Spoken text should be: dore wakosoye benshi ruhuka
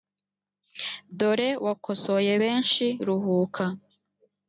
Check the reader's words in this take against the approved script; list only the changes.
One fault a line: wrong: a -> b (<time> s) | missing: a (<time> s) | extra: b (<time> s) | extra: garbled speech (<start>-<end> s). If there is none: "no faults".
no faults